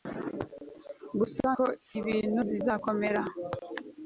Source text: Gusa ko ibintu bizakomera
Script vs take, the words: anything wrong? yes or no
no